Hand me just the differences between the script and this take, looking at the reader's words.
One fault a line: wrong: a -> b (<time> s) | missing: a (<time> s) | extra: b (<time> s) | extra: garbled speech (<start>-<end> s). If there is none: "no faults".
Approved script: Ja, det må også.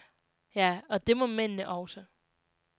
extra: og (0.9 s)
extra: mændene (1.2 s)